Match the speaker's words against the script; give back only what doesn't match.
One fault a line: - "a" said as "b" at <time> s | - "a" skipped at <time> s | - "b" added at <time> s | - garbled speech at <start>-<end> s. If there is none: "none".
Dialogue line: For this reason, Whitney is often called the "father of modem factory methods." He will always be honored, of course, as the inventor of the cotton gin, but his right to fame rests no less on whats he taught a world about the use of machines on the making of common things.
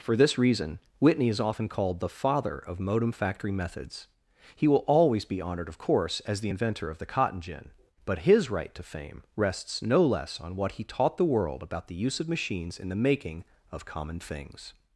- "whats" said as "what" at 10.5 s
- "a" said as "the" at 11.2 s
- "on" said as "in" at 12.8 s